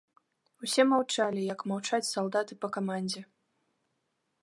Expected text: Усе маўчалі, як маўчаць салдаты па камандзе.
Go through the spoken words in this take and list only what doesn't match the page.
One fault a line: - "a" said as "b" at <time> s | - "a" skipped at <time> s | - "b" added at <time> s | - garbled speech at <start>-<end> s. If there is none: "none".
none